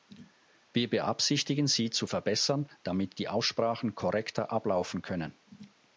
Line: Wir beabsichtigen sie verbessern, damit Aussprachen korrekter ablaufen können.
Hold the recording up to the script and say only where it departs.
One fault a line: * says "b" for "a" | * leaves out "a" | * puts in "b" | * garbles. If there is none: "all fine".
* puts in "zu"
* puts in "die"